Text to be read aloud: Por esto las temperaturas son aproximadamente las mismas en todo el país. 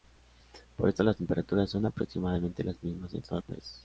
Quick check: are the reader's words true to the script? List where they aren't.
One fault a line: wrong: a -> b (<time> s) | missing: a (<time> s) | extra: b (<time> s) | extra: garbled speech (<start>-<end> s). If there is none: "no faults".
no faults